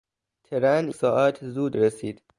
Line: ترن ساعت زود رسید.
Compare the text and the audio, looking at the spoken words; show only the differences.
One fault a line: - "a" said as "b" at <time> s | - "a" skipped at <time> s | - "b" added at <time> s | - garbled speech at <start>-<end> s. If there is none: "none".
none